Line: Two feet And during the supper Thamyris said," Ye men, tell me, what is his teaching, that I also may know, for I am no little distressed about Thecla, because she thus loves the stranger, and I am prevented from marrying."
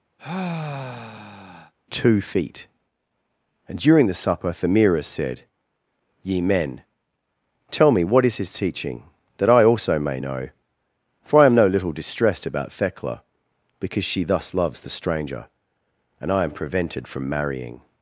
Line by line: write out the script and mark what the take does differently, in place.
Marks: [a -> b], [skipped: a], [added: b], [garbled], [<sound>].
[sigh] Two feet And during the supper Thamyris said," Ye men, tell me, what is his teaching, that I also may know, for I am no little distressed about Thecla, because she thus loves the stranger, and I am prevented from marrying."